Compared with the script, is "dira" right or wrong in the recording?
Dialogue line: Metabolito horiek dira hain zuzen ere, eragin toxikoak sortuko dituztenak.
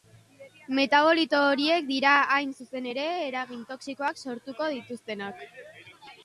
right